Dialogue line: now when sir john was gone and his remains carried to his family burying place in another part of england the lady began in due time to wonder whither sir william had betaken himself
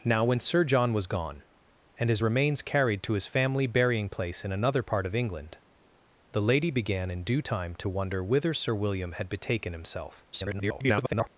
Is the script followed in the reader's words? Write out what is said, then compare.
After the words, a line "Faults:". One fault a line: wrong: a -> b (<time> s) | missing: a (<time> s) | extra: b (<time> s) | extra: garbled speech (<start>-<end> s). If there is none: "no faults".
now when sir john was gone and his remains carried to his family burying place in another part of england the lady began in due time to wonder whither sir william had betaken himself [garbled]
Faults:
extra: garbled speech (10.3-11.3 s)